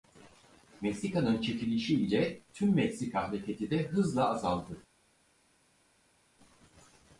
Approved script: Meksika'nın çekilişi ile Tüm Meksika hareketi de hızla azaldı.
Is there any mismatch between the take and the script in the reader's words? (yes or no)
no